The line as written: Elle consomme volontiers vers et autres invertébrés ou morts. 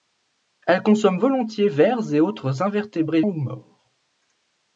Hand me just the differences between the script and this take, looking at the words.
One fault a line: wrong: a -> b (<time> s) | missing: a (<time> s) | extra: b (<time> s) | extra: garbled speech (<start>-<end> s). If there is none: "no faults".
no faults